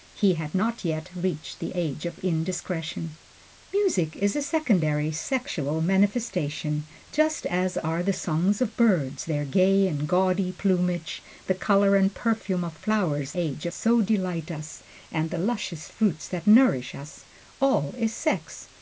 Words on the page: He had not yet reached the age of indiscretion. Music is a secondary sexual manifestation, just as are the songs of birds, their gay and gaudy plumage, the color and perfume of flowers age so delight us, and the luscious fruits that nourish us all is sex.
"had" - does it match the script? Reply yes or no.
yes